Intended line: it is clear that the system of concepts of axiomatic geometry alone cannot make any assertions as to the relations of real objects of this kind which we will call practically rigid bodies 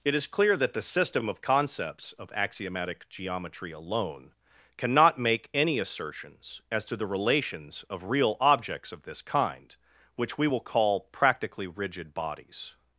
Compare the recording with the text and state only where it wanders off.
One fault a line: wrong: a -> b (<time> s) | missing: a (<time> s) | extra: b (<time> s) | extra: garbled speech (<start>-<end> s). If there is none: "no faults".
no faults